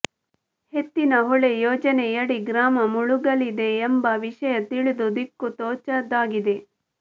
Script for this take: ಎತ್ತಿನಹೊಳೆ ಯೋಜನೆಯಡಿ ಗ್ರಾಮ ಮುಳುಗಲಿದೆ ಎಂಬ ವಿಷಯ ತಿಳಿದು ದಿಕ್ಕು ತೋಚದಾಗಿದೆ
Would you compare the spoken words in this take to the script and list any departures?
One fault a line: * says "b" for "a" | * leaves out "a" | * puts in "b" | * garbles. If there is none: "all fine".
all fine